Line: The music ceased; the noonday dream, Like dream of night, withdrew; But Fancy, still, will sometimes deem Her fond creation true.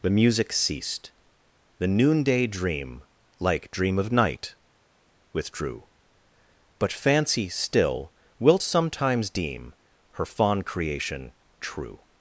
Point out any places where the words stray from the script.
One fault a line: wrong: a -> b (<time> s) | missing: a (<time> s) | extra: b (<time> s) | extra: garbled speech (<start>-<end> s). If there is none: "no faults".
wrong: will -> wilt (8.4 s)